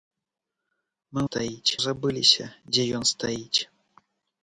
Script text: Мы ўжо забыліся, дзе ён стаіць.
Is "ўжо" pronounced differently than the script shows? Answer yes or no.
yes